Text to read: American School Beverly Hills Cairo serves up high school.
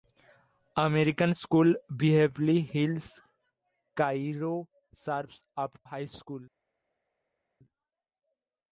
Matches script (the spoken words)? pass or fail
pass